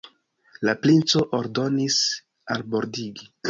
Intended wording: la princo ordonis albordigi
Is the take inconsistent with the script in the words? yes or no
no